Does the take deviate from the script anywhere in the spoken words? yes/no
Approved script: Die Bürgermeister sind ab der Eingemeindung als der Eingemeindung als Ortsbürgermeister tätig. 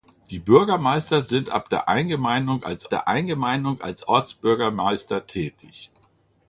no